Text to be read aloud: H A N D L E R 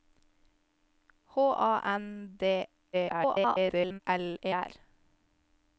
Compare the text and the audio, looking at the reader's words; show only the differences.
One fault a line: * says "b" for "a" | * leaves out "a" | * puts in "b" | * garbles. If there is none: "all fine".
* garbles